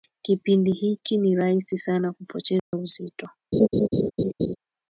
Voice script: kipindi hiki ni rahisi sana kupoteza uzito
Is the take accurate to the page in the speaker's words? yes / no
yes